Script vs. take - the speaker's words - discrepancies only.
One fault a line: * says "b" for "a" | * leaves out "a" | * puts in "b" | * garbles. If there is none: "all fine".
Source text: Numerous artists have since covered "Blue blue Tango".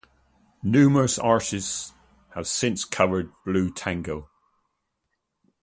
* leaves out "blue"